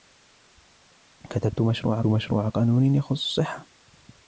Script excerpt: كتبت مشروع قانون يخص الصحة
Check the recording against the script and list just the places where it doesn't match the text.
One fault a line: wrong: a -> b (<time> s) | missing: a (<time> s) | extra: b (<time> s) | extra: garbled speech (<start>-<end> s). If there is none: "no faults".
extra: مشروع (2.1 s)